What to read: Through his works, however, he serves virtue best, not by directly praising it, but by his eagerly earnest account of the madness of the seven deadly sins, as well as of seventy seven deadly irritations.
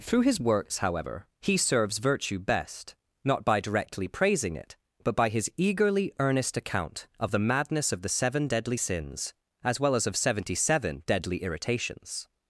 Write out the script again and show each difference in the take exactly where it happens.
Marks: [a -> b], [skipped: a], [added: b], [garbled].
Through his works, however, he serves virtue best, not by directly praising it, but by his eagerly earnest account of the madness of the seven deadly sins, as well as of seventy seven deadly irritations.